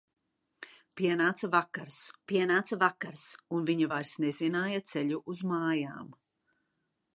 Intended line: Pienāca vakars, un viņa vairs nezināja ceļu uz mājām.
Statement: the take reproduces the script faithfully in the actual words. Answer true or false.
false